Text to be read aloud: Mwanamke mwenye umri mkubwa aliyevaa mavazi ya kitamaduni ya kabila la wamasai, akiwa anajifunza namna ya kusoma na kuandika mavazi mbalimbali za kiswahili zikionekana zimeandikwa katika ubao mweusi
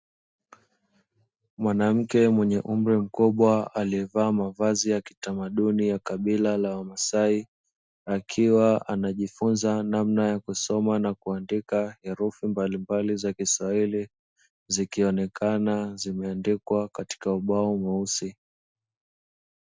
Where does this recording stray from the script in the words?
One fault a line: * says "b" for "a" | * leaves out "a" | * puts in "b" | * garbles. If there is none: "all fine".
* says "herufi" for "mavazi"